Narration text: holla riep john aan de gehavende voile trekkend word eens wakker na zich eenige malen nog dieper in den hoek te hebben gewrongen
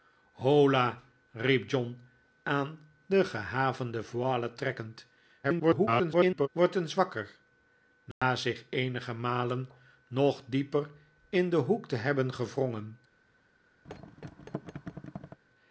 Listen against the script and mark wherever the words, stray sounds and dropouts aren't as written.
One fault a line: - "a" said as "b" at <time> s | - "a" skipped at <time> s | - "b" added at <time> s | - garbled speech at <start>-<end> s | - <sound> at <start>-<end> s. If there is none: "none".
- garbled speech at 5.4-6.5 s
- dropout at 8.1-8.2 s
- thud at 13.8-15.4 s